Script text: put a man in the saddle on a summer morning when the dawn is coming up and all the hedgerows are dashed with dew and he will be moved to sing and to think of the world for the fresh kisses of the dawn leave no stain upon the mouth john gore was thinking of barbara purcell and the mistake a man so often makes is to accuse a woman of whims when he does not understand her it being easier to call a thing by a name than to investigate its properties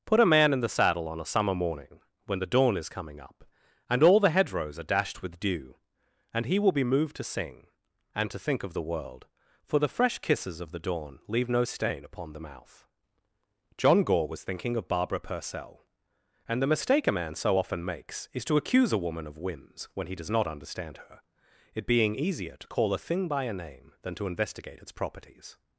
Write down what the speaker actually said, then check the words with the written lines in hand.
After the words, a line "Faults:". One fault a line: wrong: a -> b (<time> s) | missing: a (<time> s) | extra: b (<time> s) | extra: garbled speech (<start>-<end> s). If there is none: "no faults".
put a man in the saddle on a summer morning when the dawn is coming up and all the hedgerows are dashed with dew and he will be moved to sing and to think of the world for the fresh kisses of the dawn leave no stain upon the mouth john gore was thinking of barbara purcell and the mistake a man so often makes is to accuse a woman of whims when he does not understand her it being easier to call a thing by a name than to investigate its properties
Faults:
no faults